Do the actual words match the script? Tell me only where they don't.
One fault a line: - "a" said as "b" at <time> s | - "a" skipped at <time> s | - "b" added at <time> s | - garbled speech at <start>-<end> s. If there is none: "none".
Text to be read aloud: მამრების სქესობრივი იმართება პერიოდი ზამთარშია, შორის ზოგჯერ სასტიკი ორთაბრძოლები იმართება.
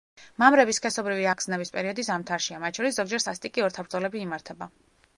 - "იმართება" said as "აღგზნების" at 1.3 s
- "მათ" added at 2.7 s